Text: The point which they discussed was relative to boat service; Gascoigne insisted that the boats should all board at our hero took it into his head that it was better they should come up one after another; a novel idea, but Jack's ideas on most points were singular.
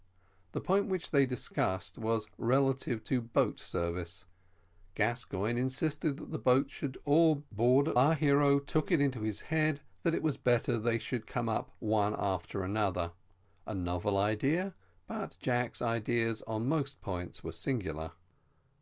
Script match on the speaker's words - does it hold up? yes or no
yes